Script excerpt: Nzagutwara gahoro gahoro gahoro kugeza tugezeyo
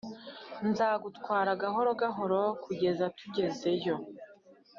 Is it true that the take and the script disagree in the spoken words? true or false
true